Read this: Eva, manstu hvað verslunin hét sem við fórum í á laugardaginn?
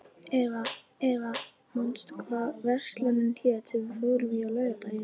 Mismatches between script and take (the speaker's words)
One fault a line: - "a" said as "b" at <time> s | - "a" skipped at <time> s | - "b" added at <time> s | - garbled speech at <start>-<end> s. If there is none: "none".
- "eva" added at 1.1 s